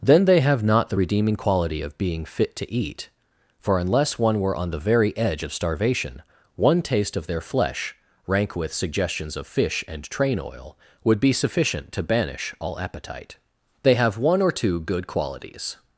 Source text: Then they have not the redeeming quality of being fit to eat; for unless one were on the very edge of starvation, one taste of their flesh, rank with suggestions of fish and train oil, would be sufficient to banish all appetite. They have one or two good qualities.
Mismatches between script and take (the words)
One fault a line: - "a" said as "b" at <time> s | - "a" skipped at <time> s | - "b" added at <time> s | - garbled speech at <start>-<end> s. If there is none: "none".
none